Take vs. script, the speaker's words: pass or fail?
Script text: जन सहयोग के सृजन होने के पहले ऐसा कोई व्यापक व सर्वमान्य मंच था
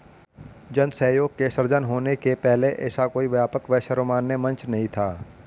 fail